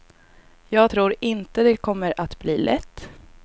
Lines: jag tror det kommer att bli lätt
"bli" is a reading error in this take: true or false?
false